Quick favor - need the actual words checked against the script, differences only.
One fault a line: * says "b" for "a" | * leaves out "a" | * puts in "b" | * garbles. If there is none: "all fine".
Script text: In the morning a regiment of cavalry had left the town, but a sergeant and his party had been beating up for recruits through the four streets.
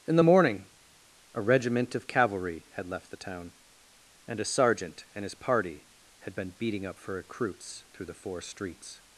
* says "and" for "but"